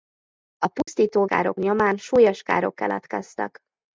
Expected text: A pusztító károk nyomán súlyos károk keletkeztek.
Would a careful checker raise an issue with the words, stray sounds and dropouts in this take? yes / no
yes